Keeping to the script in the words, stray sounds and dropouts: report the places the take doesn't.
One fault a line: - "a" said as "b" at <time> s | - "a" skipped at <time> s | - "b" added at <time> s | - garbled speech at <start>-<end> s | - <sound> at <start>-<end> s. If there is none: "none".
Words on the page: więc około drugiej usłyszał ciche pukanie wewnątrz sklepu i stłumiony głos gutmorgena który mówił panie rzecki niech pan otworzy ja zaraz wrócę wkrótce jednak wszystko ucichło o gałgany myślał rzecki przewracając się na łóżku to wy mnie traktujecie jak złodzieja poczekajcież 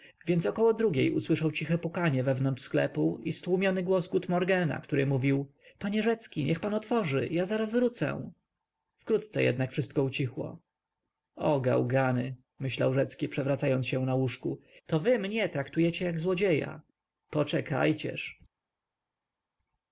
none